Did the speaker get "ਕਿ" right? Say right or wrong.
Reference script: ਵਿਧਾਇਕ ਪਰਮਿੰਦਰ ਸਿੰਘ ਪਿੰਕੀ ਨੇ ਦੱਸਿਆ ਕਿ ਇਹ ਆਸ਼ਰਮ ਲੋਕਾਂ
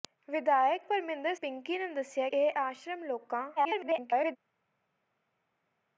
wrong